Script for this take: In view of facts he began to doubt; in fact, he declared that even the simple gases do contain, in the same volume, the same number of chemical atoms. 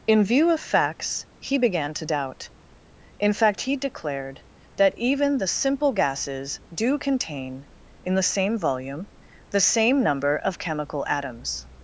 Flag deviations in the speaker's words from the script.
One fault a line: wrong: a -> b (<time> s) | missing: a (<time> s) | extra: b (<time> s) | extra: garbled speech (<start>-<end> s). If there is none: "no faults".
no faults